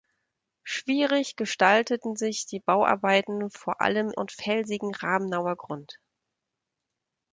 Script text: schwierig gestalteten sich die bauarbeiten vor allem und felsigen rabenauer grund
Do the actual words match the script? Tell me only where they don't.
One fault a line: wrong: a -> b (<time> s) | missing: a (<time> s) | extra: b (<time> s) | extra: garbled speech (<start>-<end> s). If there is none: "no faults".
no faults